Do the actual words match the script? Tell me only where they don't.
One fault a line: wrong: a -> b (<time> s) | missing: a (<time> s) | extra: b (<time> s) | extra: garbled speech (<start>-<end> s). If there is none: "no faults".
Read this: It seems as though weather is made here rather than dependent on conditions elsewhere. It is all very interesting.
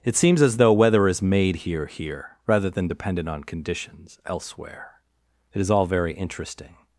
extra: here (1.9 s)